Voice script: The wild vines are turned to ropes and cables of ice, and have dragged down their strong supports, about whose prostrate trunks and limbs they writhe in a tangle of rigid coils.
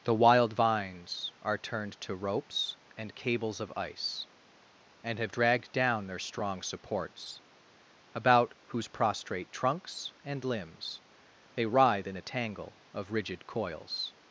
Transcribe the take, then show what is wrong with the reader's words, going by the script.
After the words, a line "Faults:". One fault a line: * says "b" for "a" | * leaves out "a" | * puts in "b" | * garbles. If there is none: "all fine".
The wild vines are turned to ropes and cables of ice, and have dragged down their strong supports, about whose prostrate trunks and limbs they writhe in a tangle of rigid coils.
Faults:
all fine